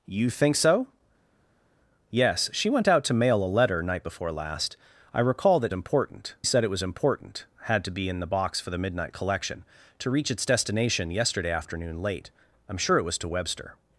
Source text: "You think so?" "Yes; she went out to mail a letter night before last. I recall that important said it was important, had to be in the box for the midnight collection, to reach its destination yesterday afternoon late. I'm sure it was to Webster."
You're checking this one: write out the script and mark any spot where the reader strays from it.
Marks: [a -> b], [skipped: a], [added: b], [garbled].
"You think so?" "Yes; she went out to mail a letter night before last. I recall that important said it was important, had to be in the box for the midnight collection, to reach its destination yesterday afternoon late. I'm sure it was to Webster."